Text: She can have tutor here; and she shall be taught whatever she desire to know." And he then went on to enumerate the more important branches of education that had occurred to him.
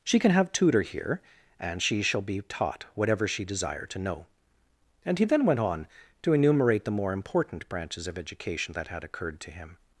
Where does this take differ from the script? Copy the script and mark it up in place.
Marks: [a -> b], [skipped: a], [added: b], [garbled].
She can have tutor here; and she shall be taught whatever she desire to know." And he then went on to enumerate the more important branches of education that had occurred to him.